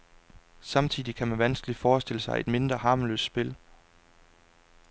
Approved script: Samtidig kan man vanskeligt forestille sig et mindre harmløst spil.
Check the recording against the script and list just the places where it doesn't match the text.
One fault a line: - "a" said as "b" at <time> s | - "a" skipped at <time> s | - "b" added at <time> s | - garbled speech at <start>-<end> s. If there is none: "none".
none